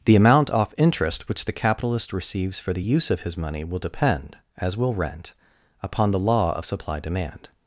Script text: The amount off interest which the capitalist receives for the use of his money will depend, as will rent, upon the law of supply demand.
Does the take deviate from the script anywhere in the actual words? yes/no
no